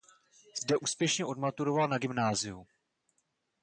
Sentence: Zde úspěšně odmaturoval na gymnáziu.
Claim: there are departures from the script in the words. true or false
false